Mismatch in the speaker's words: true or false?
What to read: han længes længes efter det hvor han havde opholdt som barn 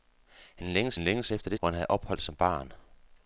false